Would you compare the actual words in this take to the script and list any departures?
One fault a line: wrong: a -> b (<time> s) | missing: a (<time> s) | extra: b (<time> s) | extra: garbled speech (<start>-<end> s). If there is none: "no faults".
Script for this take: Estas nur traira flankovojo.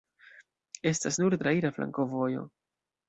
no faults